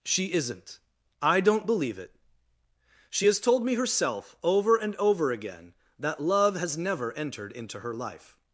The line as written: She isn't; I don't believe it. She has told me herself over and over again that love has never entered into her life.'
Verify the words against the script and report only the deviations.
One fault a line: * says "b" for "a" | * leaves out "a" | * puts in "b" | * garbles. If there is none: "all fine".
all fine